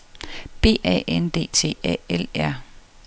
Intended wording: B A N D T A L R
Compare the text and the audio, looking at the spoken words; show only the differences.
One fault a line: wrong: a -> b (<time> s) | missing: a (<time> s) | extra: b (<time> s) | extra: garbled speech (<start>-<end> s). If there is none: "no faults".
no faults